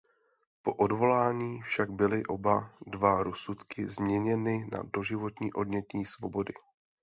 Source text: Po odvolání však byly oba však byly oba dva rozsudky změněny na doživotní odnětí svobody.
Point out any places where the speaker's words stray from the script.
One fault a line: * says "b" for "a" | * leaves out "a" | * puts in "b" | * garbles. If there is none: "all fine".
* leaves out "však byly oba"